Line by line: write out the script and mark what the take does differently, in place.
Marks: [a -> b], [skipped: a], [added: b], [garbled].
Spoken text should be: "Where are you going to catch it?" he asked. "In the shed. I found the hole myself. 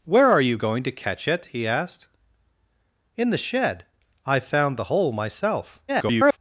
"Where are you going to catch it?" he asked. "In the shed. I found the hole myself. [garbled]